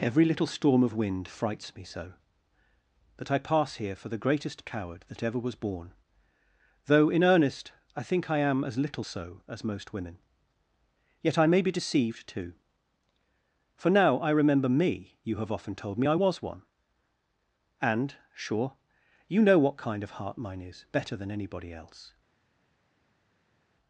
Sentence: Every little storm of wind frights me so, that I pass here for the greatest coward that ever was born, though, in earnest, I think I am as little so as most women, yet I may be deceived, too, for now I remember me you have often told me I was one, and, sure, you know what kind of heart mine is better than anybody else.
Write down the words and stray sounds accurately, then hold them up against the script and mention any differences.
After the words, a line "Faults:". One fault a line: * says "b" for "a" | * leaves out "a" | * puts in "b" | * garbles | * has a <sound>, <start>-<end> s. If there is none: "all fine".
Every little storm of wind frights me so, that I pass here for the greatest coward that ever was born, though, in earnest, I think I am as little so as most women, yet I may be deceived, too, for now I remember me you have often told me I was one, and, sure, you know what kind of heart mine is better than anybody else.
Faults:
all fine